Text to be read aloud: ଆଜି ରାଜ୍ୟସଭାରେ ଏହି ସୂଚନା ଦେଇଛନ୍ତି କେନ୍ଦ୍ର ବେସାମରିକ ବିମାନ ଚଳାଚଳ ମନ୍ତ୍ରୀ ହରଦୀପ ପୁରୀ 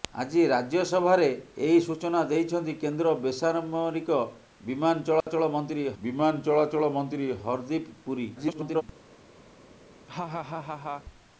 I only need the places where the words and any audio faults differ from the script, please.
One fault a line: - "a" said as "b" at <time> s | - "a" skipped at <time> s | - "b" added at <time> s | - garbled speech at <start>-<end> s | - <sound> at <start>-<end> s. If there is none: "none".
- dropout at 5.2-5.3 s
- "ବିମାନ ଚଳାଚଳ ମନ୍ତ୍ରୀ" added at 6.0 s
- garbled speech at 8.4-8.8 s
- laugh at 10.1-11.0 s